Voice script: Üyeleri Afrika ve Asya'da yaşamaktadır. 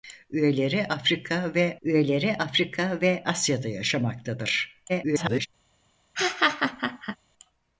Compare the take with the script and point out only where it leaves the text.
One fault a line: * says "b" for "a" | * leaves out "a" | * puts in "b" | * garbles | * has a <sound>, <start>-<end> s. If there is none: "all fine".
* puts in "üyeleri Afrika ve"
* garbles
* has a laugh, 6.1-7.2 s